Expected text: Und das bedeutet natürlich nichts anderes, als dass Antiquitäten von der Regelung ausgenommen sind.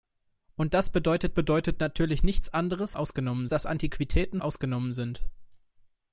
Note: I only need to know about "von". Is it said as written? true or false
false